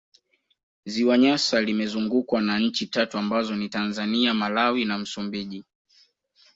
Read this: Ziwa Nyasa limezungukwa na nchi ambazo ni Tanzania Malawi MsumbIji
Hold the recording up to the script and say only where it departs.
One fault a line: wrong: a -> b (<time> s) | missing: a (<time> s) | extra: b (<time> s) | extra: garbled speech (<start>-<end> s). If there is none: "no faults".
extra: tatu (2.9 s)
extra: na (4.8 s)